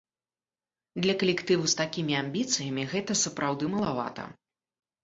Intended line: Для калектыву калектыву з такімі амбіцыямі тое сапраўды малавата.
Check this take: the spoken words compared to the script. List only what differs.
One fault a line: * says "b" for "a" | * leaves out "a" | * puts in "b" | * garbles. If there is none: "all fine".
* leaves out "калектыву"
* says "гэта" for "тое"